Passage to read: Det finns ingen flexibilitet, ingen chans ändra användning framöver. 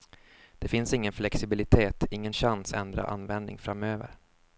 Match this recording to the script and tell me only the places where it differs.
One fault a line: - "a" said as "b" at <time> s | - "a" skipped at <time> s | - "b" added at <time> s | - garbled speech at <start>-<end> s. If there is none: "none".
none